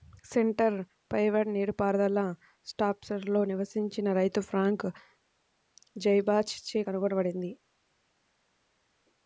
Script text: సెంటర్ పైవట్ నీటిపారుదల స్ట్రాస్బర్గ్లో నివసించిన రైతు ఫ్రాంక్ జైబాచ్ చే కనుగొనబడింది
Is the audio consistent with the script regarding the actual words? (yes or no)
yes